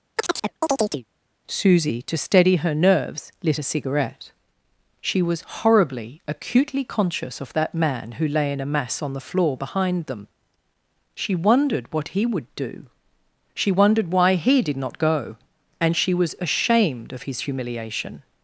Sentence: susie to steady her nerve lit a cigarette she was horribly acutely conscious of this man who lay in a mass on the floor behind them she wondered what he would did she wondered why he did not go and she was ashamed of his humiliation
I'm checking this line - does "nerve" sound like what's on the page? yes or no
no